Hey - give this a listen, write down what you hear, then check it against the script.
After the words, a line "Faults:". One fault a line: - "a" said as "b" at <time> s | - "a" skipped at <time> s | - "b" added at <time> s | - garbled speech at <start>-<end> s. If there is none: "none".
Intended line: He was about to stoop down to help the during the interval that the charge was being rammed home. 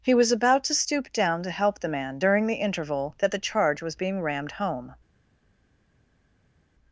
He was about to stoop down to help the man during the interval that the charge was being rammed home.
Faults:
- "man" added at 1.9 s